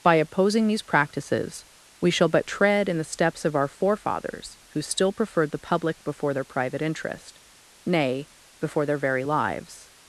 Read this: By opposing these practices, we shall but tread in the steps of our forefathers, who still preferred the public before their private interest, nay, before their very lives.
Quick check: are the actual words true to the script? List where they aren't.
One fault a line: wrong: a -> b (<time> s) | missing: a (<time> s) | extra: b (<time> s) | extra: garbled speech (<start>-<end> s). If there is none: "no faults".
no faults